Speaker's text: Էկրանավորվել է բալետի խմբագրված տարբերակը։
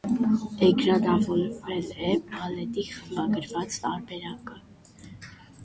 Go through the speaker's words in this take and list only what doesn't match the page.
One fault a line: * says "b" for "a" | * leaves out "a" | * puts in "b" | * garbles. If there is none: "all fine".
all fine